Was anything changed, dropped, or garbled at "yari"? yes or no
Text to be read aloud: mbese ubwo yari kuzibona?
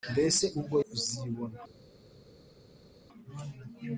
yes